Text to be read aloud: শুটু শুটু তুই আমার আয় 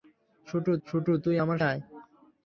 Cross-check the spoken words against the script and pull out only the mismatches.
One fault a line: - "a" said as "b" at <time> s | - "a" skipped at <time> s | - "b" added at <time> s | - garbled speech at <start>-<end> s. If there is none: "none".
none